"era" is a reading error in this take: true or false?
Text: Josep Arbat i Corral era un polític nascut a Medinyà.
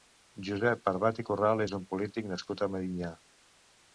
true